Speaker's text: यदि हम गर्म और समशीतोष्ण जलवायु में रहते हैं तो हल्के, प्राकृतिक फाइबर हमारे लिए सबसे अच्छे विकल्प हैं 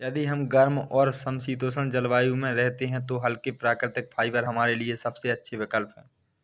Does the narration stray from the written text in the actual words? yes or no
no